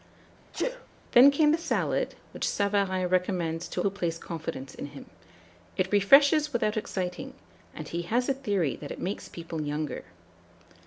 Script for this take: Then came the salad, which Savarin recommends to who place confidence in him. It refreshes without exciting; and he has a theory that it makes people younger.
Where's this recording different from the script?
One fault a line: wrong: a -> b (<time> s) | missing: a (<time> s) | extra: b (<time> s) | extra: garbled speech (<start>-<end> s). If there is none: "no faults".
no faults